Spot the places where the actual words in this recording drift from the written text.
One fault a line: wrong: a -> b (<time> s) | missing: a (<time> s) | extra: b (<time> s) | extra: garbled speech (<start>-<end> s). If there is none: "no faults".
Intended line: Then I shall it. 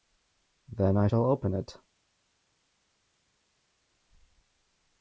extra: open (1.2 s)